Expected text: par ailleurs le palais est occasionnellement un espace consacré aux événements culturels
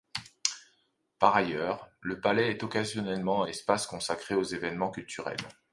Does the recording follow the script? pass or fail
pass